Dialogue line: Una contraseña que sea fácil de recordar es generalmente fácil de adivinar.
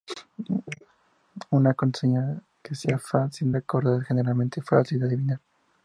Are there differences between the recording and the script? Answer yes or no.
yes